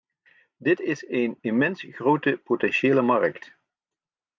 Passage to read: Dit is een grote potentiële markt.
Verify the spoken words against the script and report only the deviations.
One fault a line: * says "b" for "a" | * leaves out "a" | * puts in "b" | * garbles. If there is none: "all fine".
* puts in "immens"